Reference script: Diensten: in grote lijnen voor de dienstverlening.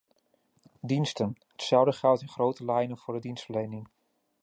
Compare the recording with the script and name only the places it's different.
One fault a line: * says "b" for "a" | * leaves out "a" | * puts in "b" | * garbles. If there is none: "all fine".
* puts in "hetzelfde geldt"